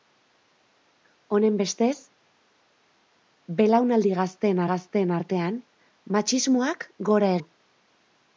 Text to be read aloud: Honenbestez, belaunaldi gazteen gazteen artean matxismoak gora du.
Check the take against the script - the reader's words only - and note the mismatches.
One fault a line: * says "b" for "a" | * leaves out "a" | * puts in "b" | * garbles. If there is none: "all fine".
all fine